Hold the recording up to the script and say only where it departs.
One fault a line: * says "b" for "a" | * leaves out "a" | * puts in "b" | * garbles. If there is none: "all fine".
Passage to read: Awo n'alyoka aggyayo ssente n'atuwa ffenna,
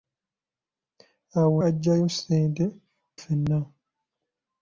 * leaves out "n'alyoka"
* leaves out "n'atuwa"